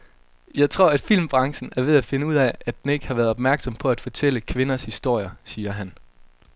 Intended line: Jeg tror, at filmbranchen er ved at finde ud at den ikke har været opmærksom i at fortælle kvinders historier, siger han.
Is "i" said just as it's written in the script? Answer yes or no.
no